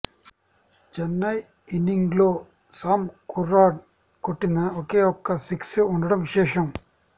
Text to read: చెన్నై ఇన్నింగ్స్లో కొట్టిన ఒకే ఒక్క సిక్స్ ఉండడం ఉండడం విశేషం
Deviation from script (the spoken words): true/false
true